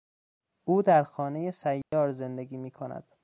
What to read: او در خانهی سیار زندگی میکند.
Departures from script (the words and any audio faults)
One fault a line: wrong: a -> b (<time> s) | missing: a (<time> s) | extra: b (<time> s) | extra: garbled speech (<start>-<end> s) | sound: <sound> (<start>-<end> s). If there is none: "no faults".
sound: dropout (1.8-1.9 s)